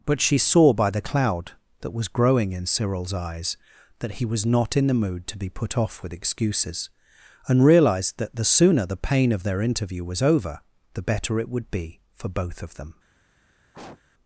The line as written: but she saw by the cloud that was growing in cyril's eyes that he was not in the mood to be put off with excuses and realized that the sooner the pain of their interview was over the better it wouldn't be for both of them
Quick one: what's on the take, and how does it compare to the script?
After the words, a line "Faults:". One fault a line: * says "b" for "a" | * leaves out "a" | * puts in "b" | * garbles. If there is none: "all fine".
but she saw by the cloud that was growing in cyril's eyes that he was not in the mood to be put off with excuses and realized that the sooner the pain of their interview was over the better it would be for both of them
Faults:
* says "would" for "wouldn't"